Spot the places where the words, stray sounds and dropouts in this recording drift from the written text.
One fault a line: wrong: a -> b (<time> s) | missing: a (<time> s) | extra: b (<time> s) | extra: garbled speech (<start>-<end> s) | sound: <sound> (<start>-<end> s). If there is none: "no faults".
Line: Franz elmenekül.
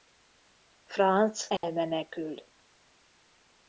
sound: dropout (1.6-1.6 s)